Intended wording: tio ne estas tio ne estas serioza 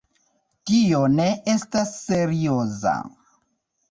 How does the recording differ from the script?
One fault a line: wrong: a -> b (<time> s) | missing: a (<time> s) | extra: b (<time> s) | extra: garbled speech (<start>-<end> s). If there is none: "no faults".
missing: tio ne estas (1.9 s)